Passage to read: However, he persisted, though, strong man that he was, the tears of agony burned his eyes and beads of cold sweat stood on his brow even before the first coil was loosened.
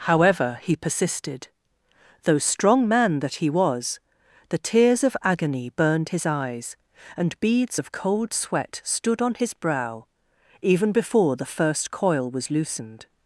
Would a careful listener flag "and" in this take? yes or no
no